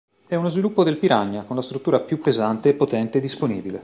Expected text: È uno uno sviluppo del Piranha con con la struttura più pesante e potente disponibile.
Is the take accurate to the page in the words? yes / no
no